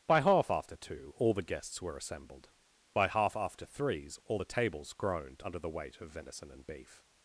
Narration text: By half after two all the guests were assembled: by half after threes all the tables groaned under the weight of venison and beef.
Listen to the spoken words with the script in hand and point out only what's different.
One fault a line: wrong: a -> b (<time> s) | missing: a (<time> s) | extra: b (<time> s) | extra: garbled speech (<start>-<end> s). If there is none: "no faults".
no faults